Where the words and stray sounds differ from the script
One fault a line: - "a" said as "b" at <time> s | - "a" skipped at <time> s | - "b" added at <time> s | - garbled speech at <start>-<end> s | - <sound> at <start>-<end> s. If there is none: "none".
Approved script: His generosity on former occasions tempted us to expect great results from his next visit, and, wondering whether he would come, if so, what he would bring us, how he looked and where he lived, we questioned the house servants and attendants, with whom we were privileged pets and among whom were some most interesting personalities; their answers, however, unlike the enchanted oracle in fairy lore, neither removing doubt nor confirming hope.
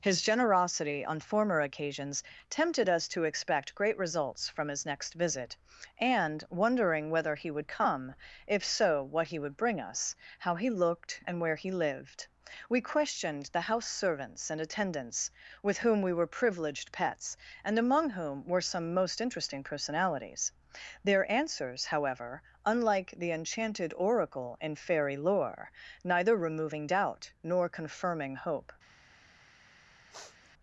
- sniff at 30.1-30.5 s